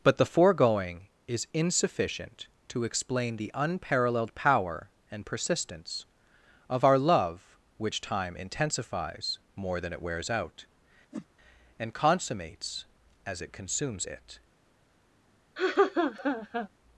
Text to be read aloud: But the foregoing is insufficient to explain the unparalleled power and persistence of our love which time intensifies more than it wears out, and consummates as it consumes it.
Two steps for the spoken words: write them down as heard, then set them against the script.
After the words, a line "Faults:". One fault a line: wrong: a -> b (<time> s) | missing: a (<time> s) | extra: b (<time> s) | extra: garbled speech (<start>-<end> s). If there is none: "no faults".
But the foregoing is insufficient to explain the unparalleled power and persistence of our love which time intensifies more than it wears out, and consummates as it consumes it.
Faults:
no faults